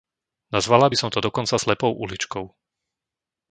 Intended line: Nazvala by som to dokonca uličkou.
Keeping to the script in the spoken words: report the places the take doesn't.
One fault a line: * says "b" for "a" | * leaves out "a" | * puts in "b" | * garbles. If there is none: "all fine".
* puts in "slepou"